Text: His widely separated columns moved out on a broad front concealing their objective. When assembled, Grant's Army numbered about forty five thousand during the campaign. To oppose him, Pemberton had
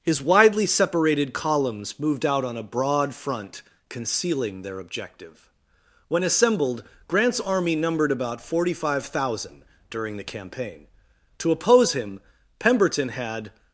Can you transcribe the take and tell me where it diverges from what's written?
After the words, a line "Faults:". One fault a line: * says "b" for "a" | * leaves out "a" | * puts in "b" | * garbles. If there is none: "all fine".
His widely separated columns moved out on a broad front concealing their objective. When assembled, Grant's Army numbered about forty five thousand during the campaign. To oppose him, Pemberton had
Faults:
all fine